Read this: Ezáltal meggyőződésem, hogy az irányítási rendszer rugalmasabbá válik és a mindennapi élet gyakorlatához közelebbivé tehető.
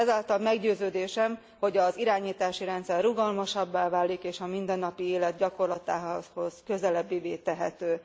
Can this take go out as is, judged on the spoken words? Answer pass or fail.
pass